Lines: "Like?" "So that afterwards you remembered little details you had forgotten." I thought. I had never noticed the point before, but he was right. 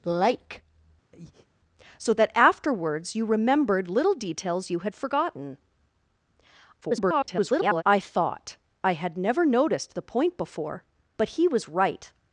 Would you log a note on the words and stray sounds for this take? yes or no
yes